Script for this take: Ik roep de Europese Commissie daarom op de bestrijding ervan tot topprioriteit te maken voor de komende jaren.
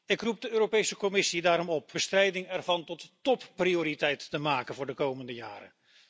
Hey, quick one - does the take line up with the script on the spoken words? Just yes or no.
no